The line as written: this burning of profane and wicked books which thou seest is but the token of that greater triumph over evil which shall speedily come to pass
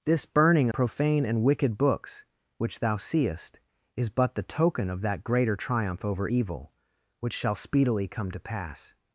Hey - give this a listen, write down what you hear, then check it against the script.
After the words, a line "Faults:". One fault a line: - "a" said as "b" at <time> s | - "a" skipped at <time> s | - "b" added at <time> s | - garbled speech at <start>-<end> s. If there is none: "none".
this burning profane and wicked books which thou seest is but the token of that greater triumph over evil which shall speedily come to pass
Faults:
- "of" skipped at 0.7 s